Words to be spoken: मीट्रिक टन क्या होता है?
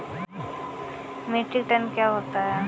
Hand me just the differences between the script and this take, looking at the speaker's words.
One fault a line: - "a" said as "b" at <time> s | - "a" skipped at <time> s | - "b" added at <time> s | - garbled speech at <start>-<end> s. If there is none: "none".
none